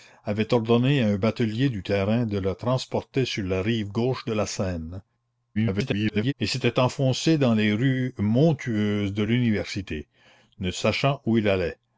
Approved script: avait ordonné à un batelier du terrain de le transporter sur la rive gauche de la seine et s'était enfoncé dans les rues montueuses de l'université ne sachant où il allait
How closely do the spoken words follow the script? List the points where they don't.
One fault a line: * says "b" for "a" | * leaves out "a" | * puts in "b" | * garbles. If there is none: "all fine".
* garbles